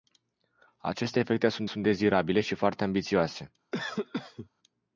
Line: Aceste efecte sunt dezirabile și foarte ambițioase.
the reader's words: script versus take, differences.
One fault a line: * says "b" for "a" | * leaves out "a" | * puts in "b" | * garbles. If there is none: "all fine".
* puts in "sunt"